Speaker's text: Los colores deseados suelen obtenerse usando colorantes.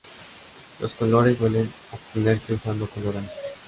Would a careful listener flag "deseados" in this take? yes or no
yes